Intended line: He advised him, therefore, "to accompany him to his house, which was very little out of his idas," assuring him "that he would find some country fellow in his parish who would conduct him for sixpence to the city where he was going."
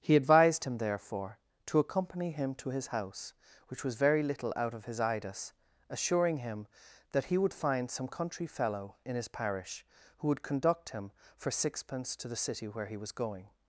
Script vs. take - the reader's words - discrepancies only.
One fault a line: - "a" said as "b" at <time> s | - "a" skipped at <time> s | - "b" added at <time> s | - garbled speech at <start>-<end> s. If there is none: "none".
none